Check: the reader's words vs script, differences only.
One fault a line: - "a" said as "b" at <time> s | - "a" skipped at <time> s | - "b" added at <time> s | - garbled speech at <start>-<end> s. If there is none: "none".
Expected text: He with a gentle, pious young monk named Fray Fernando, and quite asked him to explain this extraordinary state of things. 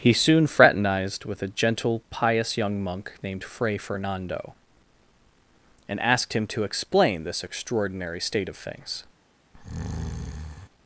- "soon fraternized" added at 0.1 s
- "quite" skipped at 6.0 s